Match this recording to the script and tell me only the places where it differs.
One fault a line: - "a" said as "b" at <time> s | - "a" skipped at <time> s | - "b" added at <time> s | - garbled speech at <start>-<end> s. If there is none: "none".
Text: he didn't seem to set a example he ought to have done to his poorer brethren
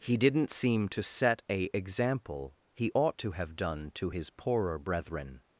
none